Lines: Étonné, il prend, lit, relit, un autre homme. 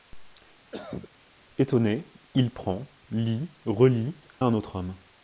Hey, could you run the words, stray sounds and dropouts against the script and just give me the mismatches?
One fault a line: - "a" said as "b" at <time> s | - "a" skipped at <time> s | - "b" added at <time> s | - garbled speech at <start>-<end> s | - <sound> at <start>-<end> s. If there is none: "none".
- cough at 0.7-1.1 s